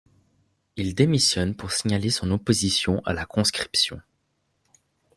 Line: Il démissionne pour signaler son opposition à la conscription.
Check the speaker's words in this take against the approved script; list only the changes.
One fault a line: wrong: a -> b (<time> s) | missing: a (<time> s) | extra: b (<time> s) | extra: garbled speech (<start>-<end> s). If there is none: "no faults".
no faults